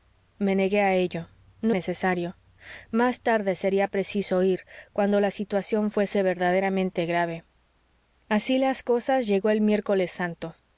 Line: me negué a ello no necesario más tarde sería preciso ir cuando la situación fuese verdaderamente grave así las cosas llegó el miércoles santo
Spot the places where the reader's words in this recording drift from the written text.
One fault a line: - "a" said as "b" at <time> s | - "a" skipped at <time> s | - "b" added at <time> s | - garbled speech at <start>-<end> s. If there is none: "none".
none